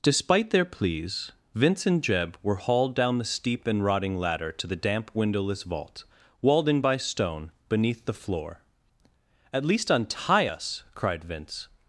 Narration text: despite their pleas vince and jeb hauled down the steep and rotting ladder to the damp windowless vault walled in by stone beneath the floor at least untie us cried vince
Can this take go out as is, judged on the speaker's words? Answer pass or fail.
fail